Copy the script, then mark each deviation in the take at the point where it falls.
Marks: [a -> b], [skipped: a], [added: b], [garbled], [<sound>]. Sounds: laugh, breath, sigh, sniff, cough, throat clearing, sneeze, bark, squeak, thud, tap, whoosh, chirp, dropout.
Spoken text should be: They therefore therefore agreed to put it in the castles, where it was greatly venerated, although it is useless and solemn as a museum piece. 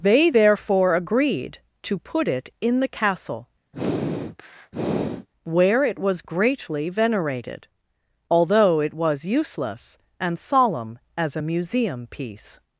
They therefore [skipped: therefore] agreed to put it in the [castles, -> castle] [sniff] where it was greatly venerated, although it [is -> was] useless and solemn as a museum piece.